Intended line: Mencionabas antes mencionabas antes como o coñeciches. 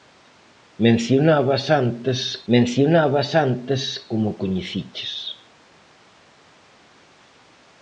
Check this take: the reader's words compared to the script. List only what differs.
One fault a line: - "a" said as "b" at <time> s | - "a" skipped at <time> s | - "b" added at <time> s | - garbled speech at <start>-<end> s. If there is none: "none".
none